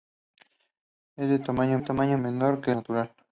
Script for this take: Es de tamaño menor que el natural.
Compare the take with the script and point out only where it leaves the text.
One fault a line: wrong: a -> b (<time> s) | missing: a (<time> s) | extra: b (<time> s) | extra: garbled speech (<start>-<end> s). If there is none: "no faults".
extra: tamaño (1.8 s)
missing: el (2.7 s)